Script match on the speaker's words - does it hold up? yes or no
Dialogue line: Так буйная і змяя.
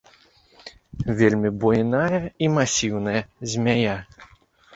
no